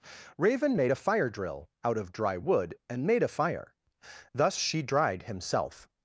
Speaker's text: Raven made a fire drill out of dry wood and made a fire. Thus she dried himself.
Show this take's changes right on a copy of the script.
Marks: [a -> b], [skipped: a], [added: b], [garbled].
Raven made a fire drill out of dry wood and made a fire. Thus she dried himself.